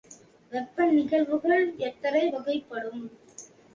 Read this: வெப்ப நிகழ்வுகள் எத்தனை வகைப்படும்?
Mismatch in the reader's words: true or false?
false